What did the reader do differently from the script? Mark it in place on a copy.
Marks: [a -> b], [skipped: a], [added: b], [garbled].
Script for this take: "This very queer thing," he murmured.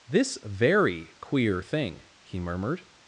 "This very queer thing," he murmured.